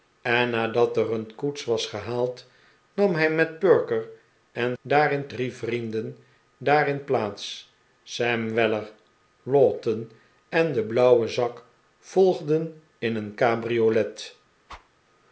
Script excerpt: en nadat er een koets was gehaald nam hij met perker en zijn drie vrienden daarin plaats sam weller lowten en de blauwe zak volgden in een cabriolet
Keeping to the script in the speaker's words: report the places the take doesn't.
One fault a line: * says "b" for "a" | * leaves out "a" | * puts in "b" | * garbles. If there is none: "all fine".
* says "daarin" for "zijn"